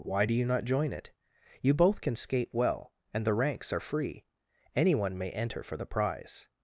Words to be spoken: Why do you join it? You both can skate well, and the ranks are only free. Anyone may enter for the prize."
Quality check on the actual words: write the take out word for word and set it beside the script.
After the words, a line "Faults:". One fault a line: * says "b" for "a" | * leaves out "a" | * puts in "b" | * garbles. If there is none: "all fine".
Why do you not join it? You both can skate well, and the ranks are free. Anyone may enter for the prize."
Faults:
* puts in "not"
* leaves out "only"